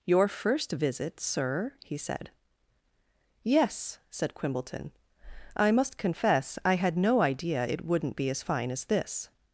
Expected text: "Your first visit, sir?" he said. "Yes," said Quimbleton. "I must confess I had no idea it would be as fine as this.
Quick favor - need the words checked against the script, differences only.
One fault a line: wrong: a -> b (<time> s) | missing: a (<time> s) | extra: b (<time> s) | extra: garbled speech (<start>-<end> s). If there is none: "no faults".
wrong: would -> wouldn't (7.8 s)